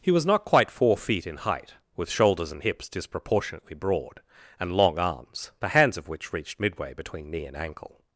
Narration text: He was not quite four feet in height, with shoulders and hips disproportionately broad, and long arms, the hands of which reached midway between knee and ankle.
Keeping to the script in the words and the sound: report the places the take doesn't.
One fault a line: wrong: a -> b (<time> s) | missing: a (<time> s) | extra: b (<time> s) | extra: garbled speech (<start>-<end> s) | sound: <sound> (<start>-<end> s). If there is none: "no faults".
no faults